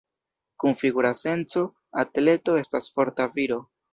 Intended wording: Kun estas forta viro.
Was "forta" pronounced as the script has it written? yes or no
yes